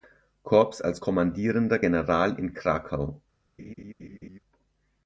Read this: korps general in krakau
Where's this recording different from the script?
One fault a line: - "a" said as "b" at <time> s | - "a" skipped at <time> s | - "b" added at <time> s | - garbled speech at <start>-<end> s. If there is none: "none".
- "als kommandierender" added at 0.8 s